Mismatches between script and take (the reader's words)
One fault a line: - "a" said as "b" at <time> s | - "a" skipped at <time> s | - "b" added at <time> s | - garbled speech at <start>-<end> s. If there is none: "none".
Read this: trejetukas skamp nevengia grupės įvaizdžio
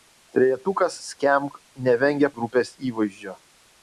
none